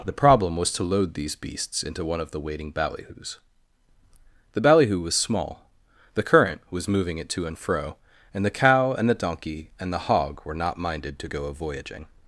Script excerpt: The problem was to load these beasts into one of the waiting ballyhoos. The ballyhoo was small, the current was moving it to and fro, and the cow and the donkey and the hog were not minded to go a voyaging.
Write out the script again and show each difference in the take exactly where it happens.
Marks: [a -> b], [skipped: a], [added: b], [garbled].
The problem was to load these beasts into one of the waiting ballyhoos. The ballyhoo was small, the current was moving it to and fro, and the cow and the donkey and the hog were not minded to go a voyaging.